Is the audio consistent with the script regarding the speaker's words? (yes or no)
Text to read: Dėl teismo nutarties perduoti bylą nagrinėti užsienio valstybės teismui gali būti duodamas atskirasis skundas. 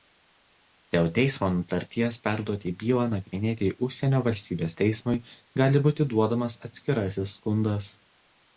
yes